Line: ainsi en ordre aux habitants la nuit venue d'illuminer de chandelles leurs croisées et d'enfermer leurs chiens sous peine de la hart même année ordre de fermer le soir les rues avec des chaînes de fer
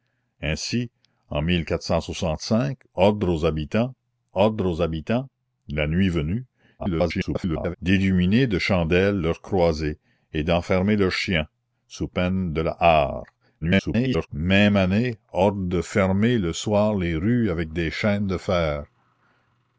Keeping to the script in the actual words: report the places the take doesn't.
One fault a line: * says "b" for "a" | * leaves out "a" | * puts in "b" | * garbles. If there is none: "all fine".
* puts in "ordre aux habitants"
* garbles
* garbles